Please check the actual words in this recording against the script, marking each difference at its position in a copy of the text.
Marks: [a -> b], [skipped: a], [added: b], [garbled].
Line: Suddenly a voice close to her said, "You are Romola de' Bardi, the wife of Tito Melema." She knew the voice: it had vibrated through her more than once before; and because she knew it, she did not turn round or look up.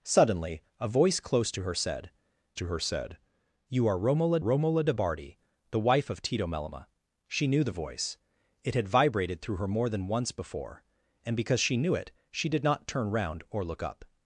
Suddenly a voice close to her said, [added: to her said] "You are Romola [added: Romola] de' Bardi, the wife of Tito Melema." She knew the voice: it had vibrated through her more than once before; and because she knew it, she did not turn round or look up.